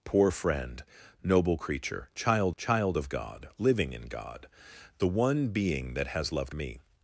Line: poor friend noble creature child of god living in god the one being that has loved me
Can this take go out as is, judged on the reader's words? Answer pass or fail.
fail